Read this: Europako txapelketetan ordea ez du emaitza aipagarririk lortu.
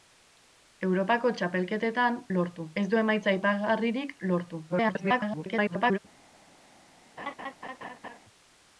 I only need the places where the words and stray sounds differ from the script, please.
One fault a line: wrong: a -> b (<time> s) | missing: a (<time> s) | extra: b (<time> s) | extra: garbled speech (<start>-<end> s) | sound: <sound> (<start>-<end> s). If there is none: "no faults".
wrong: ordea -> lortu (2.4 s)
extra: garbled speech (4.7-6.0 s)
sound: laugh (7.2-8.2 s)